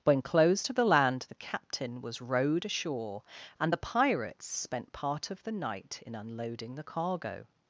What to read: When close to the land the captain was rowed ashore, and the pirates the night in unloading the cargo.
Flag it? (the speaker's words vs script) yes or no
yes